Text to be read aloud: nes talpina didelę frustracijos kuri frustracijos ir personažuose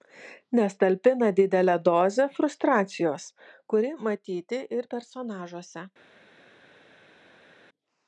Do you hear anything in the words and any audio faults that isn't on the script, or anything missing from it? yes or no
yes